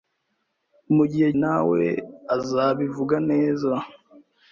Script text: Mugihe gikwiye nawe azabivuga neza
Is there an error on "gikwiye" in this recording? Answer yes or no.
yes